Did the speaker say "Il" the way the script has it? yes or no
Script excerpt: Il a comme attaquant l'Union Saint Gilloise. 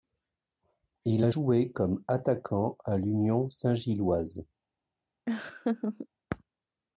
yes